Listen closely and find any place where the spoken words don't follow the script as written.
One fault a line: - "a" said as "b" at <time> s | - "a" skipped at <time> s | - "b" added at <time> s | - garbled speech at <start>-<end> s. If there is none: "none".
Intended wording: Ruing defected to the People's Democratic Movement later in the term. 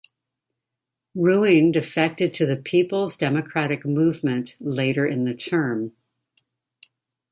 none